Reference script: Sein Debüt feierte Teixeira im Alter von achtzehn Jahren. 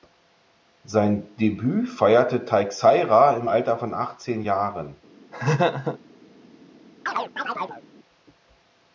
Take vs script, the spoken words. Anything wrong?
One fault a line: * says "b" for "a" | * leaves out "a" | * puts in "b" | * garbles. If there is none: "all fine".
all fine